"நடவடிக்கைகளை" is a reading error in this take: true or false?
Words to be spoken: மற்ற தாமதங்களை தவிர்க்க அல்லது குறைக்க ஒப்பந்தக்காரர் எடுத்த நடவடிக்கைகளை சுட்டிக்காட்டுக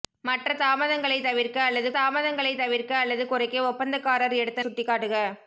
true